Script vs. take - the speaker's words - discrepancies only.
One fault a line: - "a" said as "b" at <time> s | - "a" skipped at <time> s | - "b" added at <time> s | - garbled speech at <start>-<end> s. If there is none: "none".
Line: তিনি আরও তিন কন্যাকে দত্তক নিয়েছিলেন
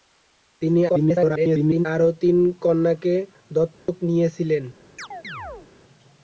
- garbled speech at 0.9-1.9 s